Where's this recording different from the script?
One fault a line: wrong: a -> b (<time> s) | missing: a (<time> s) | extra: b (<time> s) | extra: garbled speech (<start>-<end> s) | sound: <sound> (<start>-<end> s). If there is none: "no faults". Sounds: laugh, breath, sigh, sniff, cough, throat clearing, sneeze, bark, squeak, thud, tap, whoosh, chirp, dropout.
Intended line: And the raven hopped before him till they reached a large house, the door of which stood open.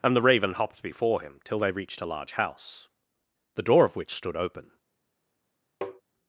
sound: tap (5.8-6.0 s)